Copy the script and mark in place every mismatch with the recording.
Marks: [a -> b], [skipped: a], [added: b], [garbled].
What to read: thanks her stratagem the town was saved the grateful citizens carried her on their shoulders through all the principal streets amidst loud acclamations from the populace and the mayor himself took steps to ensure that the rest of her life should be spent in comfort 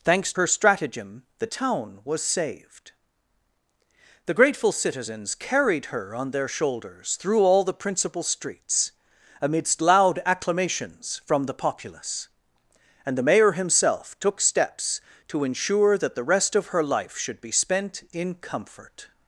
thanks her stratagem the town was saved the grateful citizens carried her on their shoulders through all the principal streets amidst loud acclamations from the populace and the mayor himself took steps to ensure that the rest of her life should be spent in comfort